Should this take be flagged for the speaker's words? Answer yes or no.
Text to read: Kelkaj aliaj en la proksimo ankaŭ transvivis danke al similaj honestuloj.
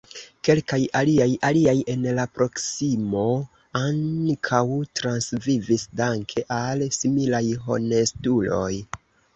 yes